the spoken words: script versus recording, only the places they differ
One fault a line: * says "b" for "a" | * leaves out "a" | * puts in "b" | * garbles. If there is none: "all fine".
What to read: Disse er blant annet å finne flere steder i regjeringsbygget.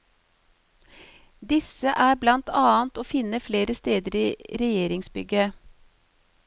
all fine